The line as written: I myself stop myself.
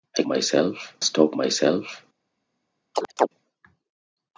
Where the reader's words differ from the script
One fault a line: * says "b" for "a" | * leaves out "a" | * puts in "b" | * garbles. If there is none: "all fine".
all fine